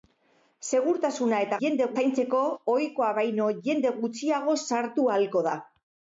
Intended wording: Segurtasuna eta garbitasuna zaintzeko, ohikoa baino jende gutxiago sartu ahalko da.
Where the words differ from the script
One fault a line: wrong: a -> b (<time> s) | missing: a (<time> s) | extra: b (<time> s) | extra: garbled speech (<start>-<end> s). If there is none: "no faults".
wrong: garbitasuna -> jende (1.7 s)